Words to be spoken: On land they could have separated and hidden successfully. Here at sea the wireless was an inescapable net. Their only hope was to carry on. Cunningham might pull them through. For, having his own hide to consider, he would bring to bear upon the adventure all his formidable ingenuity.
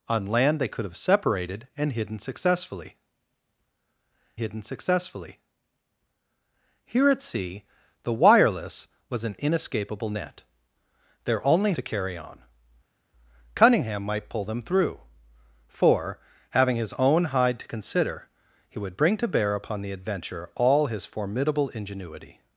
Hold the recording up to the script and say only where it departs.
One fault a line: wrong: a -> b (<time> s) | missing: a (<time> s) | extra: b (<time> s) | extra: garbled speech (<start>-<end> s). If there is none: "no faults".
extra: hidden successfully (4.4 s)
missing: hope was (11.7 s)